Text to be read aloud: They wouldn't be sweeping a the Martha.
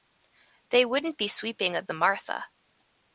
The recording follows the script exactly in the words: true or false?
true